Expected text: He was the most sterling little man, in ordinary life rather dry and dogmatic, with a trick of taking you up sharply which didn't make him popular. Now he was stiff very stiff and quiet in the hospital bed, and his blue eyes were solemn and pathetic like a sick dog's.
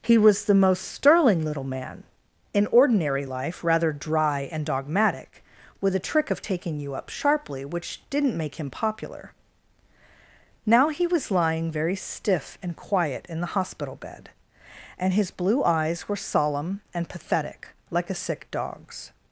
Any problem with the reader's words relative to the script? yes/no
yes